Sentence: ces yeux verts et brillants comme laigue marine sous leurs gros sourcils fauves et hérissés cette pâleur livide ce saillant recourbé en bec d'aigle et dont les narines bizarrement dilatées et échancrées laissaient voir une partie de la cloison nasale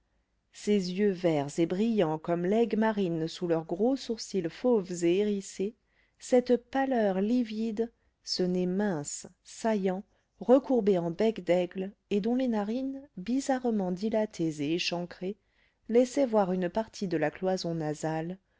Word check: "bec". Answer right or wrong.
right